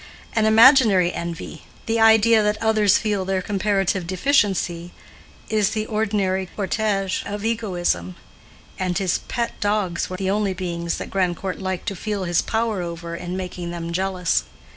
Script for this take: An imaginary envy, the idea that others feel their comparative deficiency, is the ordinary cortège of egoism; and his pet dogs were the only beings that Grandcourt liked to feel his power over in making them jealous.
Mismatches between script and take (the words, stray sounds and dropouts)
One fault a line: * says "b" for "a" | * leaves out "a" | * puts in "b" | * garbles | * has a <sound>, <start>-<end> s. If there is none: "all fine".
all fine